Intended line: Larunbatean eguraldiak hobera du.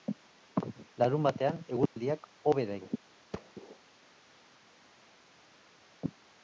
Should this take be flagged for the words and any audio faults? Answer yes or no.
yes